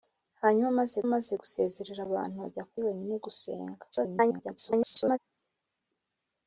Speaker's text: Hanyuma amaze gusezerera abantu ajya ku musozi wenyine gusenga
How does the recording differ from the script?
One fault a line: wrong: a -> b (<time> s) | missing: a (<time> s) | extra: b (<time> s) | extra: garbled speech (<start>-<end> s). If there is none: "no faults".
extra: amaze (1.1 s)
missing: musozi (2.8 s)
extra: garbled speech (3.9-5.2 s)